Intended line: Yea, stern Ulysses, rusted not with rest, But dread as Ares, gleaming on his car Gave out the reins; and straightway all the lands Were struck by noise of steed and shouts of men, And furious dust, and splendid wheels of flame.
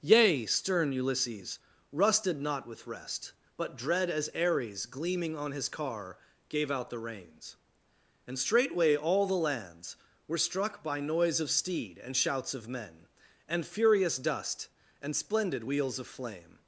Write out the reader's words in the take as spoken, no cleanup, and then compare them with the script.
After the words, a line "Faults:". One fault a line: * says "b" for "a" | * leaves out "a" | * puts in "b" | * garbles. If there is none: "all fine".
Yea, stern Ulysses, rusted not with rest, But dread as Ares, gleaming on his car Gave out the reins; and straightway all the lands Were struck by noise of steed and shouts of men, And furious dust, and splendid wheels of flame.
Faults:
all fine